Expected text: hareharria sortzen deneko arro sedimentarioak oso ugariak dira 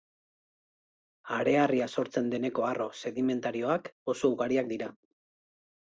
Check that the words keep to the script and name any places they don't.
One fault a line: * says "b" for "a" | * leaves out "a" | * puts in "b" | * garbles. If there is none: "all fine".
all fine